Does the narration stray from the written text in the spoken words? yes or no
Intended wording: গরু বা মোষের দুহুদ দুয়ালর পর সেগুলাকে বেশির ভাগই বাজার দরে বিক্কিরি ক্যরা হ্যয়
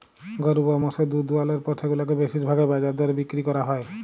no